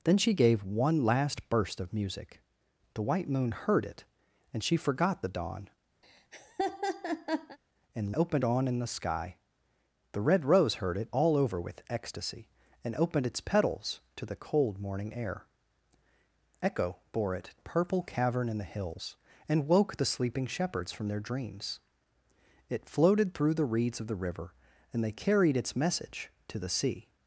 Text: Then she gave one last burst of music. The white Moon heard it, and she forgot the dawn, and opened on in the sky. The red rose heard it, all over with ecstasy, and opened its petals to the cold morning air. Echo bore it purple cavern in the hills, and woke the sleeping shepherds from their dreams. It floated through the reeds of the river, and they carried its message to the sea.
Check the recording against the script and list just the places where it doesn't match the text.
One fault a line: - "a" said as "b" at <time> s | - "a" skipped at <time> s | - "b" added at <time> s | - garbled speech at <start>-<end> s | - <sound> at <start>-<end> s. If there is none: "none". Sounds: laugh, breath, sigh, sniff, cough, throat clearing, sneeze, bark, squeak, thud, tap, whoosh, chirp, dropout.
- laugh at 6.0-7.6 s